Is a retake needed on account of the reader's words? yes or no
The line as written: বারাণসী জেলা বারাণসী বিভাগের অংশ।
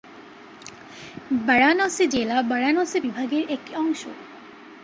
yes